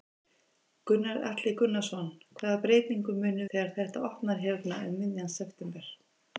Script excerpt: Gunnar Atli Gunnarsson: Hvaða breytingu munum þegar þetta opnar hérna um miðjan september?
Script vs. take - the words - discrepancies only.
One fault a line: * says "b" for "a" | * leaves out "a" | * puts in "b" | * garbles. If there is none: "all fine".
all fine